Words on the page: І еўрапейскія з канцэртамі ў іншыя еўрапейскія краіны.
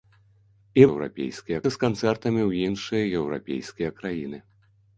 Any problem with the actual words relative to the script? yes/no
no